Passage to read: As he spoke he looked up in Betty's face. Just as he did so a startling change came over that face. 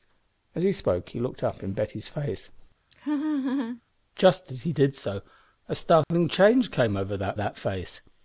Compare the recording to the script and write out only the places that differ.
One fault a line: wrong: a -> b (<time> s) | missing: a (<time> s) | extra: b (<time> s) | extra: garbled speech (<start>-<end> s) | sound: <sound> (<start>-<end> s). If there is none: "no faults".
sound: laugh (2.9-3.8 s)
sound: dropout (6.0-6.1 s)
extra: that (7.3 s)